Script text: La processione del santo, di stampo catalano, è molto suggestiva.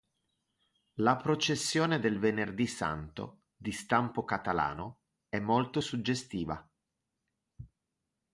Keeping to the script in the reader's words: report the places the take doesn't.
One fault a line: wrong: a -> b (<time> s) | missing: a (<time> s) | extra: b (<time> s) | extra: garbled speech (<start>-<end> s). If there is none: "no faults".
extra: venerdì (2.2 s)